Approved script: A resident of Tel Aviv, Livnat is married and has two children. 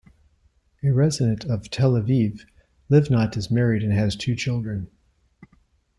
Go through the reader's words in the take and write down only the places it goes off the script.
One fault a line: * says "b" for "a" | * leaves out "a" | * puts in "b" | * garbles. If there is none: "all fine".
all fine